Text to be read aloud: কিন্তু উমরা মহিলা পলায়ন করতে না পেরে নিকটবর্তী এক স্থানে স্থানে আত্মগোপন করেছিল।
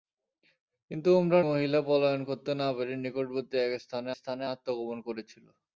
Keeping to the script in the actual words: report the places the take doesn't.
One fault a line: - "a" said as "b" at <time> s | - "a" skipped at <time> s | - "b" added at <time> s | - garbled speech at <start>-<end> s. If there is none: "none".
none